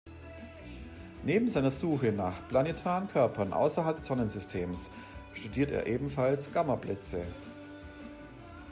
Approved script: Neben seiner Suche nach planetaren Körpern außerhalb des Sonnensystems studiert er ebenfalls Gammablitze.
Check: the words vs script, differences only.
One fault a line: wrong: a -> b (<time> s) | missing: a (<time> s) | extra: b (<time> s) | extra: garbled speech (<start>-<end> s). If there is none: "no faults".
no faults